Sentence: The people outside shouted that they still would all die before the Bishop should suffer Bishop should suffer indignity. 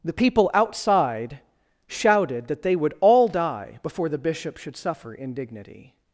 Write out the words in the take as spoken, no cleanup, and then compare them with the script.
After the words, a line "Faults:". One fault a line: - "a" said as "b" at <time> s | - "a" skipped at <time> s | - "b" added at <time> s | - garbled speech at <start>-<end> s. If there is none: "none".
The people outside shouted that they would all die before the Bishop should suffer indignity.
Faults:
- "still" skipped at 2.8 s
- "Bishop should suffer" skipped at 5.1 s